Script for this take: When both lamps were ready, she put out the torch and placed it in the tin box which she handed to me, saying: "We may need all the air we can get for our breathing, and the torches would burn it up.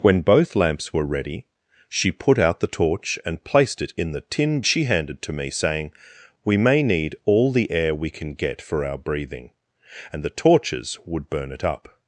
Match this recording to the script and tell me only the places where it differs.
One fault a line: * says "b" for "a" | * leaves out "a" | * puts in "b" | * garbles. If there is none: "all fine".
* leaves out "box which"